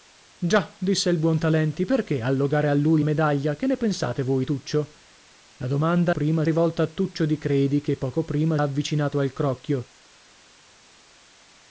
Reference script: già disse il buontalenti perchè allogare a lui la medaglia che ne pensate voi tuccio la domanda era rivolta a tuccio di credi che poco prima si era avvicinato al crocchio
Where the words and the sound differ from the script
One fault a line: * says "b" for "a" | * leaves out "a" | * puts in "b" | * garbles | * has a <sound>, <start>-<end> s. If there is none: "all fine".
* leaves out "la"
* says "prima" for "era"
* leaves out "si era"